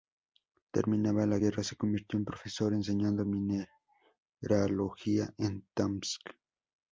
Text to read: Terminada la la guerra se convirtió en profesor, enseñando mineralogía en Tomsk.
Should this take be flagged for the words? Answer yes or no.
yes